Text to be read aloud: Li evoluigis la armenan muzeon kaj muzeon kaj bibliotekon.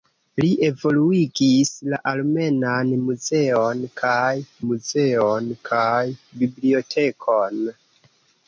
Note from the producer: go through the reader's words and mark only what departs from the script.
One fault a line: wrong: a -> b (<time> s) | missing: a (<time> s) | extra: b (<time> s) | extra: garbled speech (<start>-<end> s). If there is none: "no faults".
no faults